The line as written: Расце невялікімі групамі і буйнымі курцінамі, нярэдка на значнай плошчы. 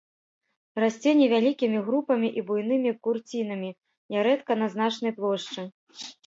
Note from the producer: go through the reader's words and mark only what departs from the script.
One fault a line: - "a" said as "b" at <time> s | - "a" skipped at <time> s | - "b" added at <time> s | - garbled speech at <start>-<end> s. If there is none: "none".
none